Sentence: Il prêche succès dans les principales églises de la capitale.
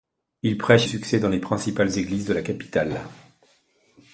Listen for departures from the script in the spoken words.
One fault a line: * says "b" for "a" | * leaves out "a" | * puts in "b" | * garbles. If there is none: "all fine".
all fine